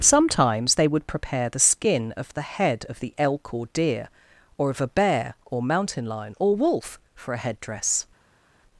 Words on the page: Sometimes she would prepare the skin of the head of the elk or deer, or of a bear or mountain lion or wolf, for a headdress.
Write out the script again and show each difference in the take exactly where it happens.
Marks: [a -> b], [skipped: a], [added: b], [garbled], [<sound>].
Sometimes [she -> they] would prepare the skin of the head of the elk or deer, or of a bear or mountain lion or wolf, for a headdress.